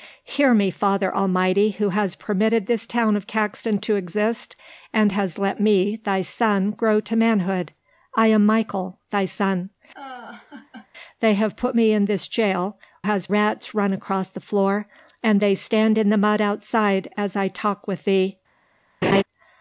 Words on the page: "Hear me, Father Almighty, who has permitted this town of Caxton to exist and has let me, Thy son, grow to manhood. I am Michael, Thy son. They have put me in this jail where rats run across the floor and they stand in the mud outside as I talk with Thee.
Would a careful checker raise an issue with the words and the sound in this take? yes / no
yes